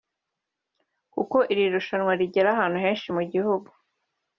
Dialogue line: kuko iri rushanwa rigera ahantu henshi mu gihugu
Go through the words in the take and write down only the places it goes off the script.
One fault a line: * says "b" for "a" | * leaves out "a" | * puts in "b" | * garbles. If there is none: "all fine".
all fine